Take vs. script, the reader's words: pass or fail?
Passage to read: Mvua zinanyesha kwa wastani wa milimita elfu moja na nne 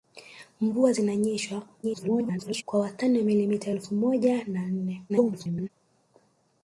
fail